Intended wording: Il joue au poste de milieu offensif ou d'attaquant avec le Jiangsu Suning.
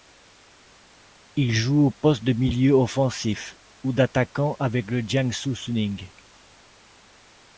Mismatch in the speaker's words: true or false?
false